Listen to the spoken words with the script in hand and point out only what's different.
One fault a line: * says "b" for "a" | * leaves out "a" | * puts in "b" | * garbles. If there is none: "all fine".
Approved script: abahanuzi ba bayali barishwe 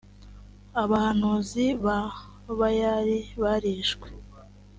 all fine